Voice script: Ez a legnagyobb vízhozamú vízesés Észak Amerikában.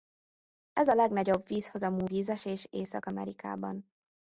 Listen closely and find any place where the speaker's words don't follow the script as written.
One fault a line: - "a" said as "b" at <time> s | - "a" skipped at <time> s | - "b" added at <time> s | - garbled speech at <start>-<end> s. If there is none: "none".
none